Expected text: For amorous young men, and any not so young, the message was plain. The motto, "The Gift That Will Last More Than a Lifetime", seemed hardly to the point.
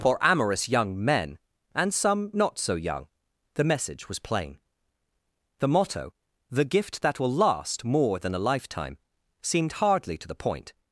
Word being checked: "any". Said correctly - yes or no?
no